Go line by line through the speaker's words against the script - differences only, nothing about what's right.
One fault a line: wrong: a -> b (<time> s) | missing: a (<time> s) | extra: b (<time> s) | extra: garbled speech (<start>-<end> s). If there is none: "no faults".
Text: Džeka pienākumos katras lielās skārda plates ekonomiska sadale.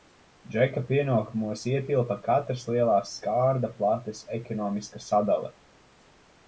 extra: ietilpa (1.7 s)